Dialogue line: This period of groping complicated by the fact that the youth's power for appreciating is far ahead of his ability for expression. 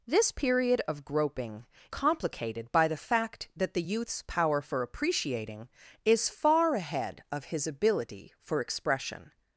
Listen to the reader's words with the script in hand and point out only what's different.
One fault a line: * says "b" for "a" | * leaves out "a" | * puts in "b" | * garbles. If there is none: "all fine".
all fine